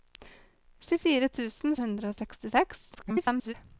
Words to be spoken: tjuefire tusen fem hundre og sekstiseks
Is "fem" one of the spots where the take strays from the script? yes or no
yes